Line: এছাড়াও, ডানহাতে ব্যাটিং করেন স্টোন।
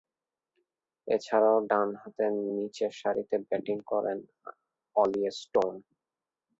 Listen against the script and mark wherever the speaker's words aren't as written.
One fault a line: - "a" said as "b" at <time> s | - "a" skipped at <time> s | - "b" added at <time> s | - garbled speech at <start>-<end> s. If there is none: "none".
- "নিচেরসারিতে" added at 2.6 s
- "অলি" added at 5.0 s